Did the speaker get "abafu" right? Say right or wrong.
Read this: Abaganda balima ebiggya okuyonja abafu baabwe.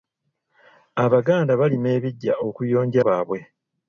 wrong